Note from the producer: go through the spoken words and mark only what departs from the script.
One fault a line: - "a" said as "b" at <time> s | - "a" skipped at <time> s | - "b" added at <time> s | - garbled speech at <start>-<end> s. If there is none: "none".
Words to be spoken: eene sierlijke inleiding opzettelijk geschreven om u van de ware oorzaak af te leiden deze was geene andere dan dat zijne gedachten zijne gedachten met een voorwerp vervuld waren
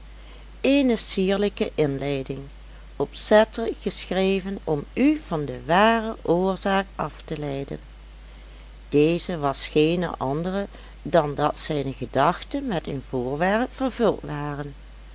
- "zijne gedachten" skipped at 12.7 s